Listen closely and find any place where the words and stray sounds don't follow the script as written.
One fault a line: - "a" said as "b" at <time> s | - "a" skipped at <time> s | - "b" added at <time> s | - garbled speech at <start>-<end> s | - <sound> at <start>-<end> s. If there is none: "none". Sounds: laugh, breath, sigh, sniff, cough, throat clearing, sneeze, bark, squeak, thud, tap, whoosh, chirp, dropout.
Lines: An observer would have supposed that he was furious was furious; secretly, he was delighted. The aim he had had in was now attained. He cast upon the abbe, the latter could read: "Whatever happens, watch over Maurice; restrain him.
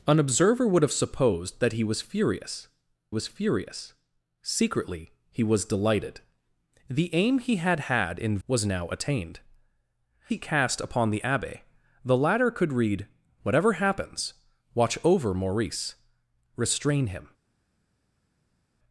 none